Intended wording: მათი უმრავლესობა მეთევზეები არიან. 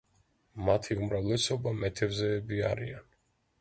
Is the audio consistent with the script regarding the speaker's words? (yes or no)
yes